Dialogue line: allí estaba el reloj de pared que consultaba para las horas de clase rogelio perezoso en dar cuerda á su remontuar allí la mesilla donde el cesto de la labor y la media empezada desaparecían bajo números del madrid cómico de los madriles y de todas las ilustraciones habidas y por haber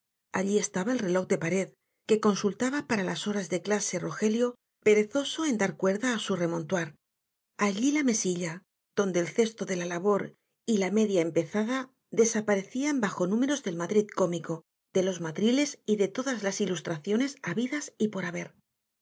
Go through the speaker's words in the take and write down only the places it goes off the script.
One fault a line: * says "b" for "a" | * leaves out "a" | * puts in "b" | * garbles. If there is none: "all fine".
all fine